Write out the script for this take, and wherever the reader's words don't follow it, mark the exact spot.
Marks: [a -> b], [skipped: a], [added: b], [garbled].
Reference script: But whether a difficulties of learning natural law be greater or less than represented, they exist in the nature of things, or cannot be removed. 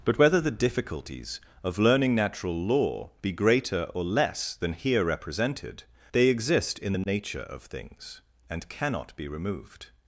But whether [a -> the] difficulties of learning natural law be greater or less than [added: here] represented, they exist in the nature of things, [or -> and] cannot be removed.